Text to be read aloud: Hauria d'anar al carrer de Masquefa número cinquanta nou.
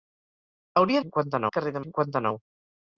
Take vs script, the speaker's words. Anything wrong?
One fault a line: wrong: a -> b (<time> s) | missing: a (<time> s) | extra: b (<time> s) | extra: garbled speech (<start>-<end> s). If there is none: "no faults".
wrong: d'anar -> cinquanta (1.0 s)
missing: Masquefa número (1.8 s)